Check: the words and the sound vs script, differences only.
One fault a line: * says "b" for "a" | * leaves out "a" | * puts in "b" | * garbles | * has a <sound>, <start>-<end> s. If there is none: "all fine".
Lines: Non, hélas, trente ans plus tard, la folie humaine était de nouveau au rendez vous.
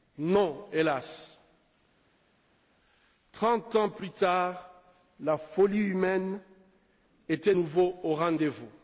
* leaves out "de"